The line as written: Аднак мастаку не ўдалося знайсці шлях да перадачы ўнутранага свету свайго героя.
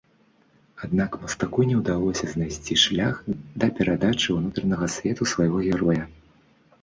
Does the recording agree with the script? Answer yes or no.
yes